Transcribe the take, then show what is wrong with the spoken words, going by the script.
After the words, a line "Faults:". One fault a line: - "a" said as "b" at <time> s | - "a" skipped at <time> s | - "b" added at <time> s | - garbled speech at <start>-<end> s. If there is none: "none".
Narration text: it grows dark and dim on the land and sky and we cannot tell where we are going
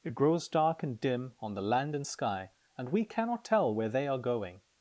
it grows dark and dim on the land and sky and we cannot tell where they are going
Faults:
- "we" said as "they" at 3.9 s